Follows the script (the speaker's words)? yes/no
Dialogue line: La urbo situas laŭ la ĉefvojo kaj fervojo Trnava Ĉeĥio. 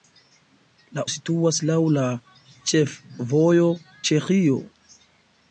no